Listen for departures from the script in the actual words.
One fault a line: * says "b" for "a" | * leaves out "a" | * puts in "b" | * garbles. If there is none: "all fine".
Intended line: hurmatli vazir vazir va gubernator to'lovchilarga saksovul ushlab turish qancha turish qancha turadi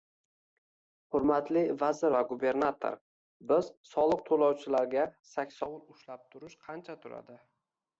* leaves out "vazir"
* puts in "biz soliq"
* leaves out "turish qancha"